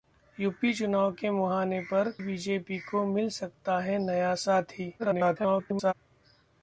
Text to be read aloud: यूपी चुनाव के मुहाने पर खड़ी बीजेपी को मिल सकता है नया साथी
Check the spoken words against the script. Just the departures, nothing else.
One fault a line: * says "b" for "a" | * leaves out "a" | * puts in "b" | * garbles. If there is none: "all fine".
* leaves out "खड़ी"
* garbles